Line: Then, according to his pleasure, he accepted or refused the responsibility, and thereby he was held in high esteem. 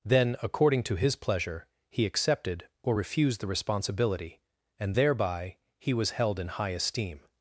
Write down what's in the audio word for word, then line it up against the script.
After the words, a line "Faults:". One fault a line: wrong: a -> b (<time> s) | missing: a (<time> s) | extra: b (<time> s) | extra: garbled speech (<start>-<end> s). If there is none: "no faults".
Then, according to his pleasure, he accepted or refused the responsibility, and thereby he was held in high esteem.
Faults:
no faults